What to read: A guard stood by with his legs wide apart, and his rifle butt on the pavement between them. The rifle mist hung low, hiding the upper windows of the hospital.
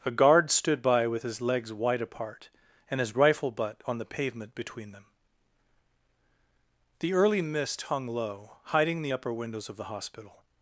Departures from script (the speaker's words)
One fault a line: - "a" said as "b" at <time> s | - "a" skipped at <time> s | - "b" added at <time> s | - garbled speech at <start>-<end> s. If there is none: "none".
- "rifle" said as "early" at 7.1 s